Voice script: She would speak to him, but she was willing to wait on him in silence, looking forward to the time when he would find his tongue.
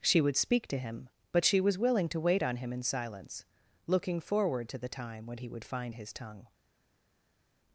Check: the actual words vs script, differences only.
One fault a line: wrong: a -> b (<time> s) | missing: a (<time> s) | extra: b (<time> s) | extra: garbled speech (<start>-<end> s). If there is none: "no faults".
no faults